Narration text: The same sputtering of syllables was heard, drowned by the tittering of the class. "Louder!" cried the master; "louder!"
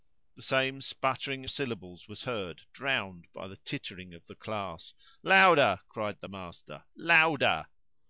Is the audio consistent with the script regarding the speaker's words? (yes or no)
no